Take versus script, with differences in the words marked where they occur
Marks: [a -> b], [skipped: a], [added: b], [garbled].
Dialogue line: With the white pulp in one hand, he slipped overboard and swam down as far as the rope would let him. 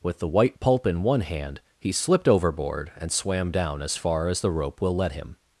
With the white pulp in one hand, he slipped overboard and swam down as far as the rope [would -> will] let him.